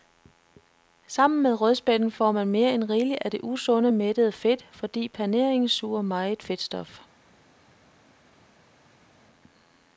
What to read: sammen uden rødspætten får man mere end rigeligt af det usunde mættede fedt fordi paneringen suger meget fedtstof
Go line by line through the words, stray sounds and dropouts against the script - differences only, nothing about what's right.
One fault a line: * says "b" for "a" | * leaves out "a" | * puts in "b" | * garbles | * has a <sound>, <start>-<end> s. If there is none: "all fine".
* says "med" for "uden"